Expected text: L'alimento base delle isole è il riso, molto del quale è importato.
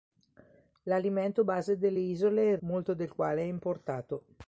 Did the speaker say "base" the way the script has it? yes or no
yes